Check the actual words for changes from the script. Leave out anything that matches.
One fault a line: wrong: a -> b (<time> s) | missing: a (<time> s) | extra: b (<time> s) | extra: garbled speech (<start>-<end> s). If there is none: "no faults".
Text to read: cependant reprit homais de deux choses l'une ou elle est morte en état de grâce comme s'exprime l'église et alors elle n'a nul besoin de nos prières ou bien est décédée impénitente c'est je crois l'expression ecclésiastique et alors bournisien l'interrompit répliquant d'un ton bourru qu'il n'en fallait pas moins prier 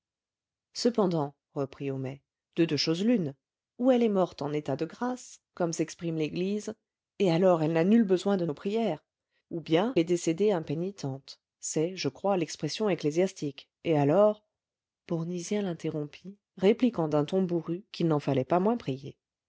no faults